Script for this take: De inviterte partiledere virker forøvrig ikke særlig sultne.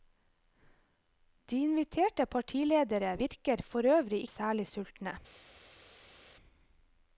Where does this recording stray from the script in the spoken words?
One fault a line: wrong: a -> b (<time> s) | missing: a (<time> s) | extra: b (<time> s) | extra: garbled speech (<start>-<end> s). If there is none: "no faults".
missing: ikke (4.2 s)